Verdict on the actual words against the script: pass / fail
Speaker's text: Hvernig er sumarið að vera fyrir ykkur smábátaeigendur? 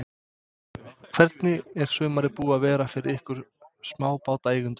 fail